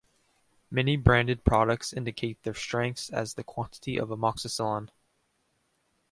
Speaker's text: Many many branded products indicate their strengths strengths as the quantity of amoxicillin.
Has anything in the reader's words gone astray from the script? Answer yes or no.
yes